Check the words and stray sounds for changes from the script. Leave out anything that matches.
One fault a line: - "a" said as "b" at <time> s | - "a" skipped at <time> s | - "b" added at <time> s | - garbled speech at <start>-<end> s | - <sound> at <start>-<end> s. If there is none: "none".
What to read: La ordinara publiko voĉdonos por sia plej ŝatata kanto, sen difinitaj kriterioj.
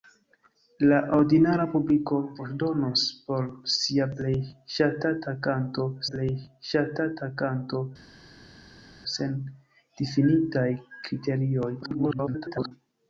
- "plej ŝatata kanto" added at 6.1 s
- garbled speech at 11.8-12.7 s